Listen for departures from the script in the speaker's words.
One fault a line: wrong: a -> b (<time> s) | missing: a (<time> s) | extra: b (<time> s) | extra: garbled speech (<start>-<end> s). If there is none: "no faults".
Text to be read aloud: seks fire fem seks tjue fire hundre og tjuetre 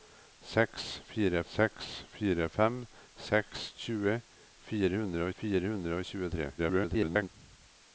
extra: seks fire (1.5 s)
extra: fire hundre (5.4 s)
extra: garbled speech (6.6-7.3 s)